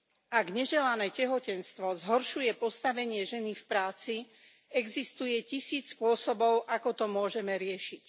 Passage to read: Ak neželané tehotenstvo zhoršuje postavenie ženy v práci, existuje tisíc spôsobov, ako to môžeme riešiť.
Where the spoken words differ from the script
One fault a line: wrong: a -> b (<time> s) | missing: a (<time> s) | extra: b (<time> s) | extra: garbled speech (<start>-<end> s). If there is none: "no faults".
no faults